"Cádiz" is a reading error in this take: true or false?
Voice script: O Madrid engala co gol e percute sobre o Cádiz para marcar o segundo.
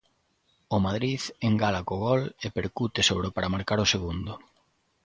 true